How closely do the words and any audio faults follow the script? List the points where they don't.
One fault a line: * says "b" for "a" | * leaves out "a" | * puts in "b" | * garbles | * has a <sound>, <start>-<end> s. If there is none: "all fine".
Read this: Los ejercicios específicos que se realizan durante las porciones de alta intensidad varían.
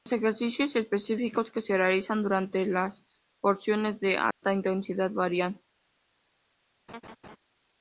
* has a dropout, 4.3-4.4 s
* has a laugh, 6.9-7.4 s